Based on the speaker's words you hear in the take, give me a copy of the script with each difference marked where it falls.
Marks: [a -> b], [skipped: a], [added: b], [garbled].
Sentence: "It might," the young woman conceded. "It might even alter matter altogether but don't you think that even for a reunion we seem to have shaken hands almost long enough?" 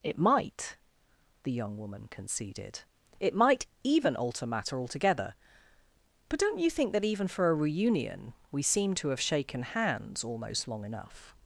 "It might," the young woman conceded. "It might even alter matter altogether but don't you think that even for a reunion we seem to have shaken hands almost long enough?"